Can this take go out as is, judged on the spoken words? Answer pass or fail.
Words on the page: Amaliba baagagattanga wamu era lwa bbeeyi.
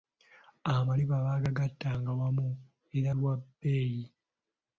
pass